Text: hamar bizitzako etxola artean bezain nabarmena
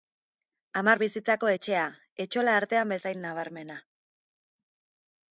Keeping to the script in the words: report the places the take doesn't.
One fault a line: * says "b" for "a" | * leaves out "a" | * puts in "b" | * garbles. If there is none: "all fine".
* puts in "etxea"